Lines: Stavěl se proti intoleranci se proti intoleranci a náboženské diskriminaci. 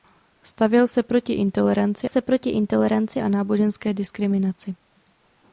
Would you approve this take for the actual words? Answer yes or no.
yes